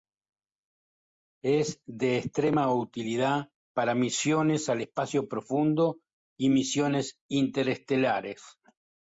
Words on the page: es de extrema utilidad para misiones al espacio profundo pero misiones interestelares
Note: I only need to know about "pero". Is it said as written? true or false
false